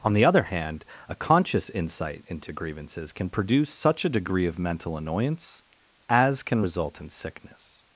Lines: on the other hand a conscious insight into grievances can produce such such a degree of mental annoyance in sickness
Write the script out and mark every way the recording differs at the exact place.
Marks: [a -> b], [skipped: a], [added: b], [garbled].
on the other hand a conscious insight into grievances can produce such [skipped: such] a degree of mental annoyance [added: as can result] in sickness